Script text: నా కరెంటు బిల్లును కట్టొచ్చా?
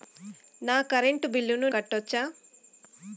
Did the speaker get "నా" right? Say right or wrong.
right